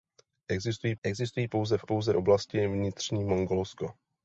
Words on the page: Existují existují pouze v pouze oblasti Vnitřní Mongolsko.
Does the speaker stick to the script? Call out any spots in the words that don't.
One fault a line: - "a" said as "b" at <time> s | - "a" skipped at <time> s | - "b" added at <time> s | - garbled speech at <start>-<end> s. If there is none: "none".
none